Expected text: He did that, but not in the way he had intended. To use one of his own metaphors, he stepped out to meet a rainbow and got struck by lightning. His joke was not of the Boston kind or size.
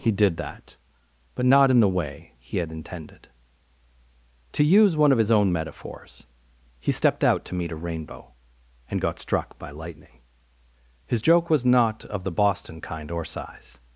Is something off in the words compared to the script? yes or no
no